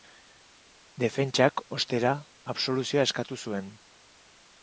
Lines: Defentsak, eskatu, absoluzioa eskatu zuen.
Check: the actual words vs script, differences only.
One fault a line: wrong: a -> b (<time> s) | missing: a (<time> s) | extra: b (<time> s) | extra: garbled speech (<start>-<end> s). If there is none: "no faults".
wrong: eskatu -> ostera (1.8 s)